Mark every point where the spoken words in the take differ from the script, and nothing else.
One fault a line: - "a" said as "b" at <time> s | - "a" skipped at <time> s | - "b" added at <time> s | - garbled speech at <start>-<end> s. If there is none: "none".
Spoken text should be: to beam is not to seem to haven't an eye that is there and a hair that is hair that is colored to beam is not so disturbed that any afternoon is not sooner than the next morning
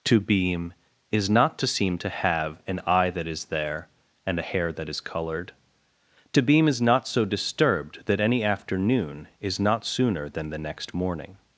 - "haven't" said as "have" at 2.1 s
- "hair that is" skipped at 5.0 s